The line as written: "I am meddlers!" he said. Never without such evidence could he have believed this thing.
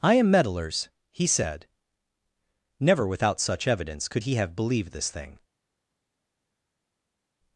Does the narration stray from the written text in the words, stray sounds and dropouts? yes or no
no